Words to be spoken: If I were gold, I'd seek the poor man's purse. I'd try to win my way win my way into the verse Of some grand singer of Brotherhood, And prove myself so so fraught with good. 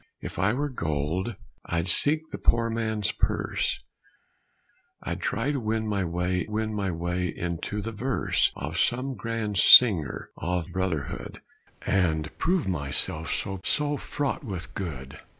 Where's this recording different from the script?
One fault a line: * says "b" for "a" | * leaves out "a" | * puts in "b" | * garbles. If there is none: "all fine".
all fine